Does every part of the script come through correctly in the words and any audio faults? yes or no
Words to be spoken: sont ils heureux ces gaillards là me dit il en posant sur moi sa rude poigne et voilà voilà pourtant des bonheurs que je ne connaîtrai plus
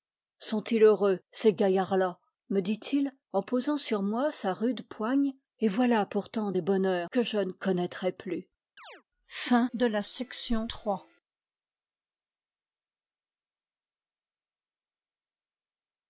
no